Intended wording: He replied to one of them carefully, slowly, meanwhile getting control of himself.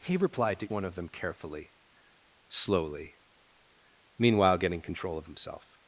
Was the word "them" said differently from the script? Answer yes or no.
no